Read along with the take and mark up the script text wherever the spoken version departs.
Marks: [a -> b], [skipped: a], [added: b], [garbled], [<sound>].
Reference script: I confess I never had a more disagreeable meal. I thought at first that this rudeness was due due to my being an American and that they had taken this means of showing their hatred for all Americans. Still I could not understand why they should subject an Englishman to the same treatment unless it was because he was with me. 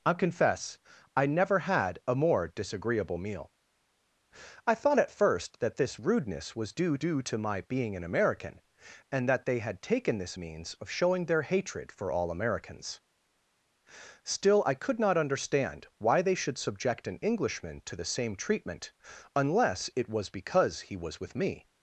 I confess I never had a more disagreeable meal. I thought at first that this rudeness was due due to my being an American and that they had taken this means of showing their hatred for all Americans. Still I could not understand why they should subject an Englishman to the same treatment unless it was because he was with me.